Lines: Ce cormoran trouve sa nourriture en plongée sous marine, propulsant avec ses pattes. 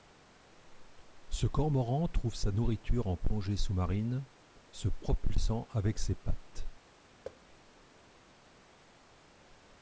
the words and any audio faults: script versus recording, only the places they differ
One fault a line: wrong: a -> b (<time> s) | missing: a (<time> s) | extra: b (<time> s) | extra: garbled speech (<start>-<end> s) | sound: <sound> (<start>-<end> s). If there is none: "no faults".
extra: se (4.7 s)
sound: thud (7.2-7.4 s)